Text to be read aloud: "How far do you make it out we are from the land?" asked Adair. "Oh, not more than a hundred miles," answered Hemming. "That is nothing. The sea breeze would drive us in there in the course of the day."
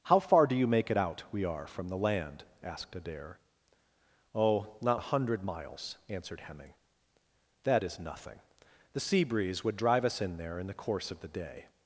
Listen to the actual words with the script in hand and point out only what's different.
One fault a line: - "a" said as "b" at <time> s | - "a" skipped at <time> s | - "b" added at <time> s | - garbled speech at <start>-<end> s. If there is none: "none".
- "more than" skipped at 5.0 s